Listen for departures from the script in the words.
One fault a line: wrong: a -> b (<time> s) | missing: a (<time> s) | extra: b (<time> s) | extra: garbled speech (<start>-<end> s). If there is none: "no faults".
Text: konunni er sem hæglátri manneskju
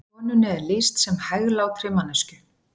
extra: lýst (0.7 s)